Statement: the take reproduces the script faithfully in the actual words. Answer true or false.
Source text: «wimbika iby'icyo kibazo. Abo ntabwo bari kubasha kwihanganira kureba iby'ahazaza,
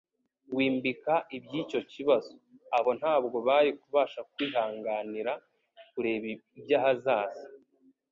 true